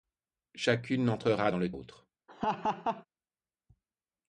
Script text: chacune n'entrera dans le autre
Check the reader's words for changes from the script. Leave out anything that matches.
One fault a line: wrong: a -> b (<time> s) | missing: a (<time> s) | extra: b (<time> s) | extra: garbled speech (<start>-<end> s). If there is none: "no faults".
no faults